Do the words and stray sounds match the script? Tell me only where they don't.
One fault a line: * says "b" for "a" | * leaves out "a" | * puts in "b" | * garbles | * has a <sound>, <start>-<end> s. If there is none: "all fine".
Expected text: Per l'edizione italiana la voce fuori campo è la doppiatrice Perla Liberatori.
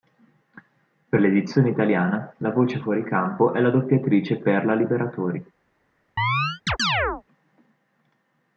* has a chirp, 6.2-7.2 s